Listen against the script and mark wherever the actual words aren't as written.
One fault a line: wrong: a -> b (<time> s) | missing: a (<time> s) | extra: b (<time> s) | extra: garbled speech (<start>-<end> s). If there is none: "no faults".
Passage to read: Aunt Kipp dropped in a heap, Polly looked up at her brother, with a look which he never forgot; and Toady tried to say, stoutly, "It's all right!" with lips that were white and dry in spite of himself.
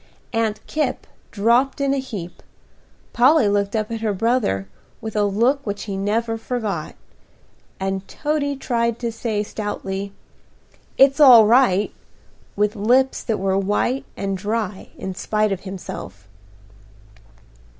no faults